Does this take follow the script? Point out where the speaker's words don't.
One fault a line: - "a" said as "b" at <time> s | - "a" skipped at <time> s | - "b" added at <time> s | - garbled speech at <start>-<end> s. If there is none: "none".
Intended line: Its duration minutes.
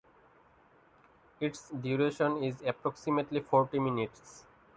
- "is approximately forty" added at 2.4 s